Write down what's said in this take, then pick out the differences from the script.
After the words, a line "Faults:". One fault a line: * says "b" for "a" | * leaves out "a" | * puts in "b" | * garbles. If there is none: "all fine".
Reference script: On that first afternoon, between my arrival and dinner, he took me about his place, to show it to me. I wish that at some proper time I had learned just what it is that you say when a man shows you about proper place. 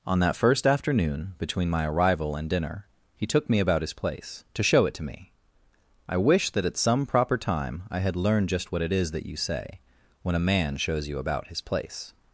On that first afternoon, between my arrival and dinner, he took me about his place, to show it to me. I wish that at some proper time I had learned just what it is that you say when a man shows you about his place.
Faults:
* says "his" for "proper"